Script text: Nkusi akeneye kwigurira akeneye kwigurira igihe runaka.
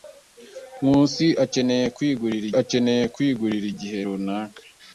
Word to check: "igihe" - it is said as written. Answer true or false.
true